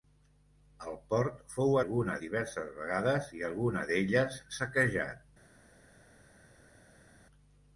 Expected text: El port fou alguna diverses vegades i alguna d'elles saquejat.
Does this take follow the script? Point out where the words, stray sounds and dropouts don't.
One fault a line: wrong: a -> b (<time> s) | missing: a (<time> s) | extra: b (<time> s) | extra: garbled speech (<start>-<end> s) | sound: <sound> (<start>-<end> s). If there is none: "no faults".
no faults